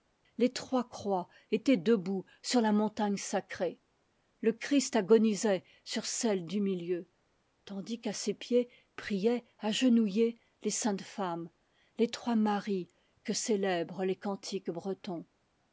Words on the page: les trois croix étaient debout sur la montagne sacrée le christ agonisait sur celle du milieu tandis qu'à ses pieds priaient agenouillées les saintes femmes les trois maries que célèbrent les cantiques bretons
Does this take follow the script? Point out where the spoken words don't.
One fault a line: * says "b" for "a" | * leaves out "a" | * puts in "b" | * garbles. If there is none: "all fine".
all fine